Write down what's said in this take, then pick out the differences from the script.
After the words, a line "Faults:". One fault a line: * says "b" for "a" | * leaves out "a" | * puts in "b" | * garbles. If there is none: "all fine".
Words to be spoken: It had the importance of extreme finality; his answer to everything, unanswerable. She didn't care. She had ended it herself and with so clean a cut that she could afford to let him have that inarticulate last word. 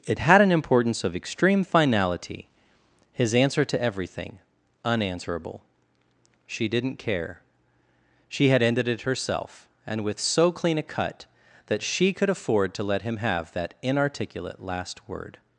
It had an importance of extreme finality; his answer to everything, unanswerable. She didn't care. She had ended it herself and with so clean a cut that she could afford to let him have that inarticulate last word.
Faults:
* says "an" for "the"